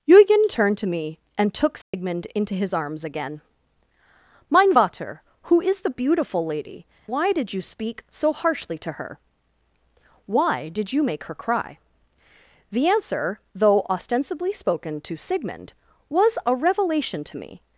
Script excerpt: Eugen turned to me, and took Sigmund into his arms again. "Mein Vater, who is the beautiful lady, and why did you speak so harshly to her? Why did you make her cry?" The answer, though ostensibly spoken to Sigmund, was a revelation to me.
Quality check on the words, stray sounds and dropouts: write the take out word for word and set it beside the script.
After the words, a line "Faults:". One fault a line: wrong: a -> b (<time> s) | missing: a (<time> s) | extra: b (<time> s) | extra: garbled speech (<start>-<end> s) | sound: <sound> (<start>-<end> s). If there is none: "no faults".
Eugen turned to me, and took Sigmund into his arms again. "Mein Vater, who is the beautiful lady, why did you speak so harshly to her? Why did you make her cry?" The answer, though ostensibly spoken to Sigmund, was a revelation to me.
Faults:
sound: dropout (1.8-1.9 s)
missing: and (6.9 s)